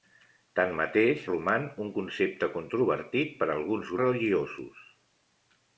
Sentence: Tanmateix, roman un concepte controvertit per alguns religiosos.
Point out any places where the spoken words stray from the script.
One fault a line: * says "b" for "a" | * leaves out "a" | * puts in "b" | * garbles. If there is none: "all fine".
all fine